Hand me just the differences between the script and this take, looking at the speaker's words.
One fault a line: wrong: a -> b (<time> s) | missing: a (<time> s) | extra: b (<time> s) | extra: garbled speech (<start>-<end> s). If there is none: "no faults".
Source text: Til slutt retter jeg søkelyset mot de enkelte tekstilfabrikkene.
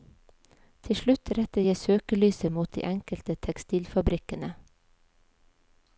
no faults